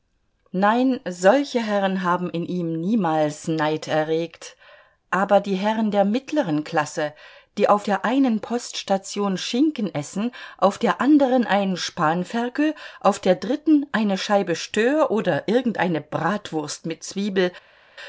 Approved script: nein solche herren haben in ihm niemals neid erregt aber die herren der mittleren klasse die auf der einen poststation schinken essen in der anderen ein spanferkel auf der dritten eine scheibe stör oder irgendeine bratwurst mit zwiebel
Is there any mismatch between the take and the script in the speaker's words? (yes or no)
yes